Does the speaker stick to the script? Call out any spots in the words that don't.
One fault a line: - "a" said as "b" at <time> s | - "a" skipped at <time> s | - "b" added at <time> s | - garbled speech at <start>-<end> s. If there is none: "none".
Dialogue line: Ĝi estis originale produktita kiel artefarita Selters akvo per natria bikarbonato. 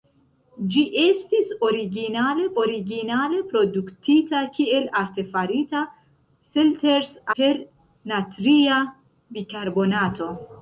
- "originale" added at 2.6 s
- "akvo" skipped at 7.1 s